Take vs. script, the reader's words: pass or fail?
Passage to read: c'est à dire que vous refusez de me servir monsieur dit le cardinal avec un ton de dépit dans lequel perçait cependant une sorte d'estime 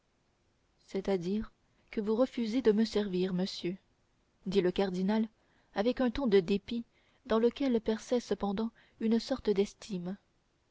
pass